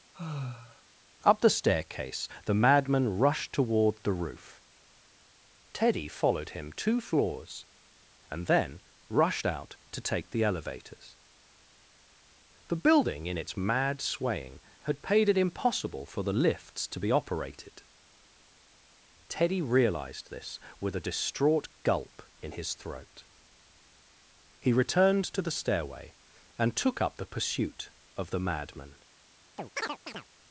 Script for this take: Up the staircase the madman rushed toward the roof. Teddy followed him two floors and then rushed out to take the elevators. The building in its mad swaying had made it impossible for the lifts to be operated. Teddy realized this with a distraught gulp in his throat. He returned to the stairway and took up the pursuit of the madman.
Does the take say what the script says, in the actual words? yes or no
no